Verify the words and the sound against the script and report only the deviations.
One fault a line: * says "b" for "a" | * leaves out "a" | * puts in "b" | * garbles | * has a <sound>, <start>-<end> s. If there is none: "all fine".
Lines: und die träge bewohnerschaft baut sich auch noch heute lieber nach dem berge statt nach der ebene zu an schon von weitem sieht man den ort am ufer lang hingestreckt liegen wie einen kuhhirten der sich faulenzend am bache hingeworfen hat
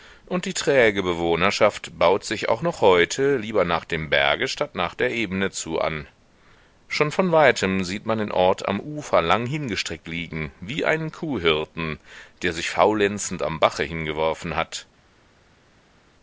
all fine